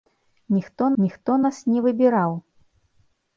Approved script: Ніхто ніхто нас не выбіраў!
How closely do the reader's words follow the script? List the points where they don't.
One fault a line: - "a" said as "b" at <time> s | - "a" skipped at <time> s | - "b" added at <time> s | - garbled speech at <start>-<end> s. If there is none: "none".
none